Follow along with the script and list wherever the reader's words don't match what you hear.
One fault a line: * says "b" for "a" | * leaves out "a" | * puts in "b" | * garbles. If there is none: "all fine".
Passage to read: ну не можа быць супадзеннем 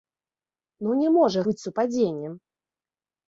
all fine